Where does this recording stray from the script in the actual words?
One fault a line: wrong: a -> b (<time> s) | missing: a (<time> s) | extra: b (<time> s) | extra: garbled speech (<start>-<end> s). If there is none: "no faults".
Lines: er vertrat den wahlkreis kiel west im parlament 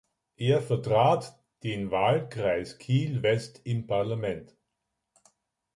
no faults